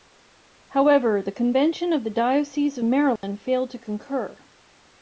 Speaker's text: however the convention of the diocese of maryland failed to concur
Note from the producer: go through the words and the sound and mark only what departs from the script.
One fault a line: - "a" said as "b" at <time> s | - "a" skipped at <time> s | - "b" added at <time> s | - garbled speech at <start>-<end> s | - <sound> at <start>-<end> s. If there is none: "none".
- dropout at 3.2-3.2 s